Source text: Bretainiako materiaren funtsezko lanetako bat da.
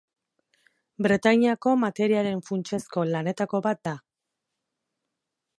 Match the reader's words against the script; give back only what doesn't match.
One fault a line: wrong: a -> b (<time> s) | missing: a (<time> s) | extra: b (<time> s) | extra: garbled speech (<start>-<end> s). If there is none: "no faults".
no faults